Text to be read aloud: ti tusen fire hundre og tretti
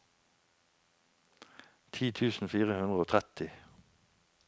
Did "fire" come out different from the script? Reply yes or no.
no